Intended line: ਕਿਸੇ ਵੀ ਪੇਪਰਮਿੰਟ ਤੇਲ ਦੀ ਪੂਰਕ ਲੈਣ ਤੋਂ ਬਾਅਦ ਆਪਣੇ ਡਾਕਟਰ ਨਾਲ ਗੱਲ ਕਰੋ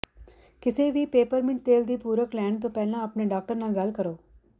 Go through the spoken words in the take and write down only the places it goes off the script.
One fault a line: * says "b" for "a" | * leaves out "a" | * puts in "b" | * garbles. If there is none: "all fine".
* says "ਪਹਿਲਾਂ" for "ਬਾਅਦ"